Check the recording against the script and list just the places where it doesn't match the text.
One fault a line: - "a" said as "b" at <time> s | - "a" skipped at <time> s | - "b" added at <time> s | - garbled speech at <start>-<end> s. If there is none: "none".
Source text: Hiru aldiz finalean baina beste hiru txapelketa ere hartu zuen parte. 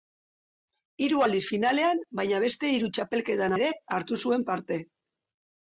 none